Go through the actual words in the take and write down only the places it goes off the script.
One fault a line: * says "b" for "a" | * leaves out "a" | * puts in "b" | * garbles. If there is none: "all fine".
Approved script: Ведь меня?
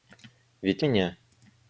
all fine